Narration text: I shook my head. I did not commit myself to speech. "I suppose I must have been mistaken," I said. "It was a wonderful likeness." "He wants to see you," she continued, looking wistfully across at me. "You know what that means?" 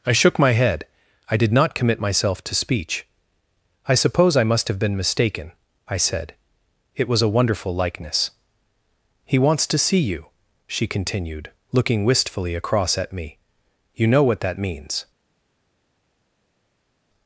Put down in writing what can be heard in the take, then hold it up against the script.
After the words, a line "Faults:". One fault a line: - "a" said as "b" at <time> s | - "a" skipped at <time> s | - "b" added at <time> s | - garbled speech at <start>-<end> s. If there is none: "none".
I shook my head. I did not commit myself to speech. "I suppose I must have been mistaken," I said. "It was a wonderful likeness." "He wants to see you," she continued, looking wistfully across at me. "You know what that means?"
Faults:
none